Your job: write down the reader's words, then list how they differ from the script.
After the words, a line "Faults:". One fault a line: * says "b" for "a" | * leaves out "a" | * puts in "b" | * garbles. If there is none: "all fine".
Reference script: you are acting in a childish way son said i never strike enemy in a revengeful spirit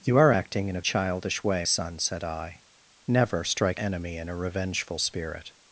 you are acting in a childish way son said i never strike enemy in a revengeful spirit
Faults:
all fine